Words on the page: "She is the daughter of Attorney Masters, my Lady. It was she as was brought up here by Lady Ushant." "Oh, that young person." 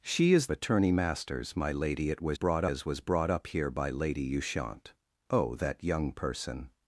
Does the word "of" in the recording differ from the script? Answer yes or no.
yes